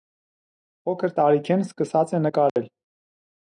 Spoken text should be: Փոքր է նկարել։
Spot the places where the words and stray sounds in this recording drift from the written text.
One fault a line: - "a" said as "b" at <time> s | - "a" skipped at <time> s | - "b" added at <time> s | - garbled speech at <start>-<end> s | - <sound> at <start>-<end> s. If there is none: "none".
- "տարիքէն սկսած" added at 1.2 s
- dropout at 2.5-2.6 s